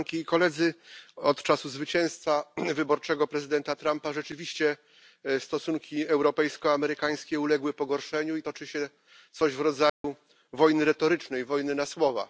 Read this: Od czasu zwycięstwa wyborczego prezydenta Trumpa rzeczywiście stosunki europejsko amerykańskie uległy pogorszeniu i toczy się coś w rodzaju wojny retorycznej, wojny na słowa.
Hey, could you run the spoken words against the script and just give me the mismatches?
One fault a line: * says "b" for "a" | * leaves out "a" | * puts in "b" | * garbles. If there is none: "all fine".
all fine